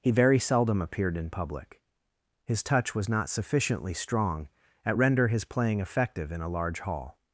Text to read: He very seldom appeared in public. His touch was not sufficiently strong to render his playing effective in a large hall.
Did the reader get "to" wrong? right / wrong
wrong